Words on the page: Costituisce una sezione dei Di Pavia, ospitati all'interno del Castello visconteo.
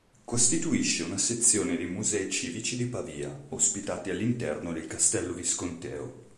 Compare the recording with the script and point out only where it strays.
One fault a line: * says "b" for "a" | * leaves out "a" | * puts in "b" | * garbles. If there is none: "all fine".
* puts in "Musei civici"